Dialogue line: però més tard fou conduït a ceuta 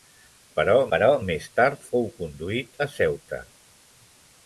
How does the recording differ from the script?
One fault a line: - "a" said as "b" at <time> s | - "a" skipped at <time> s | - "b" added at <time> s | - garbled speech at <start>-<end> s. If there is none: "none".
- "però" added at 0.9 s